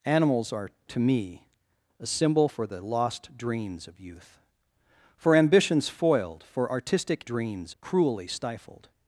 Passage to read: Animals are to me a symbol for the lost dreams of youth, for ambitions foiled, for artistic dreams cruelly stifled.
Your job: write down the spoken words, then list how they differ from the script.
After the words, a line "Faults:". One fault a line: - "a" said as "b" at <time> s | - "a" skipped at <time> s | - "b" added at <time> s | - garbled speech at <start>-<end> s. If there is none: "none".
Animals are to me a symbol for the lost dreams of youth, for ambitions foiled, for artistic dreams cruelly stifled.
Faults:
none